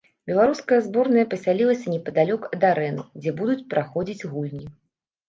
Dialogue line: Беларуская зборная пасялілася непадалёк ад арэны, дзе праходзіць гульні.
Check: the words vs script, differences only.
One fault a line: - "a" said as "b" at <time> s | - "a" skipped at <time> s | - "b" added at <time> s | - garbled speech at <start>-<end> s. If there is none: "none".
- "будуць" added at 3.4 s